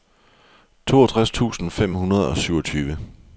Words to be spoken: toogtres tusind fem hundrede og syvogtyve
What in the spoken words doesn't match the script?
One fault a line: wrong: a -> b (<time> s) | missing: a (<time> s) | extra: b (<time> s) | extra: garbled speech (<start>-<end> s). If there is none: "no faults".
no faults